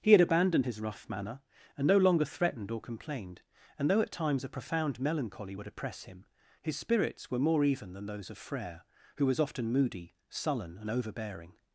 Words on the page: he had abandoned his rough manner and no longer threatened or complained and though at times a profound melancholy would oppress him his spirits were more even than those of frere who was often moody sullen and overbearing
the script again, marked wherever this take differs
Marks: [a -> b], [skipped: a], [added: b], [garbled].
he had abandoned his rough manner and no longer threatened or complained and though at times a profound melancholy would oppress him his spirits were more even than those of frere who was often moody sullen and overbearing